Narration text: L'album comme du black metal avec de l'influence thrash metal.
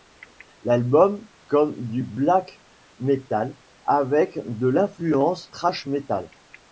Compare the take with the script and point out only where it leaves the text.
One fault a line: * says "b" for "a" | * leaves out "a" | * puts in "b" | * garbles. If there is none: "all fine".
all fine